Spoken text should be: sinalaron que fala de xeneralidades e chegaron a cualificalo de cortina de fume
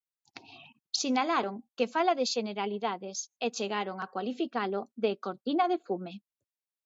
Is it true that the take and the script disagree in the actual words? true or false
false